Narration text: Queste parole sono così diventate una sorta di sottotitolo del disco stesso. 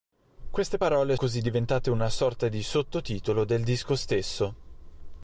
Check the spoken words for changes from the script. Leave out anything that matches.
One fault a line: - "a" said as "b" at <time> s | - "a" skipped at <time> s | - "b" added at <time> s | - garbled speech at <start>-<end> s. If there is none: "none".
- "sono" skipped at 1.2 s